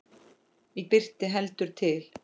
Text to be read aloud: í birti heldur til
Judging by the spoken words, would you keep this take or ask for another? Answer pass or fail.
pass